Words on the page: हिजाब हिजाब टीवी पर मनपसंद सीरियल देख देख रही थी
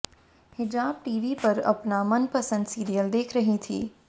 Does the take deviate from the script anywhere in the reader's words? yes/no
yes